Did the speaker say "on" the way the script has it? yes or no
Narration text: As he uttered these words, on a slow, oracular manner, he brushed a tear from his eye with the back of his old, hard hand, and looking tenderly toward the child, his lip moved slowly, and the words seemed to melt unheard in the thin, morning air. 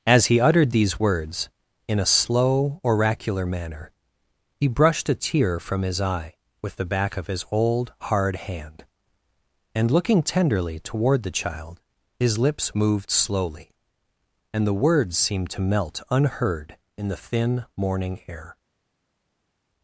no